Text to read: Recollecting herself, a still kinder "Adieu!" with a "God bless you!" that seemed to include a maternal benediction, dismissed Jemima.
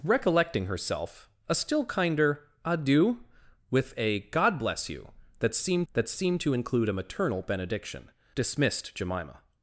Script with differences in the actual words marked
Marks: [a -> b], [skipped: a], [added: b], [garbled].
Recollecting herself, a still kinder "Adieu!" with a "God bless you!" that seemed [added: that seemed] to include a maternal benediction, dismissed Jemima.